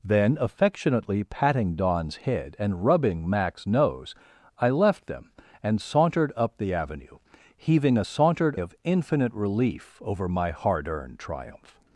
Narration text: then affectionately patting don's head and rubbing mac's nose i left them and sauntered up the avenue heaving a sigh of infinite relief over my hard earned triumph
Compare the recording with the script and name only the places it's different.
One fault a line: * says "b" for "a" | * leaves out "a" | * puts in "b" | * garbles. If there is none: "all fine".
* says "sauntered" for "sigh"